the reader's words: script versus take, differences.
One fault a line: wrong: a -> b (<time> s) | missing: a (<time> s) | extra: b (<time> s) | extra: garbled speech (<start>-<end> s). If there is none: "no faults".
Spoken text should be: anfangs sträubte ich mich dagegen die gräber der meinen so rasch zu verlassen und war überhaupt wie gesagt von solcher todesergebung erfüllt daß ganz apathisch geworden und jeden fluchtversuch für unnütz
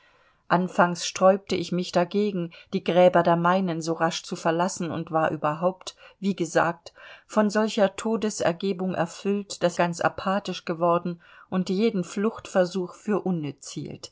no faults